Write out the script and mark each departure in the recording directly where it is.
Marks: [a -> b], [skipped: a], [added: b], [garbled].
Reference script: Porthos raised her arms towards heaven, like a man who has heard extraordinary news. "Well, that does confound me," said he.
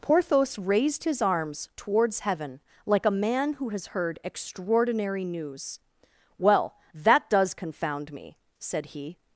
Porthos raised [her -> his] arms towards heaven, like a man who has heard extraordinary news. "Well, that does confound me," said he.